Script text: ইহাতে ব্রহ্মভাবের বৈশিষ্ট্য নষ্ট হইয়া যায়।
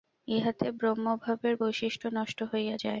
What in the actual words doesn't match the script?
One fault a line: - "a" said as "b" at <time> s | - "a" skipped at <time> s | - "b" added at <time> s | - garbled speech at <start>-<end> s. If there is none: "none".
none